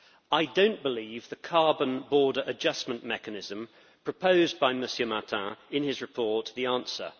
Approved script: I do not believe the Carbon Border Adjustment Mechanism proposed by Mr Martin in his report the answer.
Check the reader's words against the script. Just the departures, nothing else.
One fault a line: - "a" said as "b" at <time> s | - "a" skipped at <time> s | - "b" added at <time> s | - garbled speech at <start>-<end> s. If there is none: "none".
none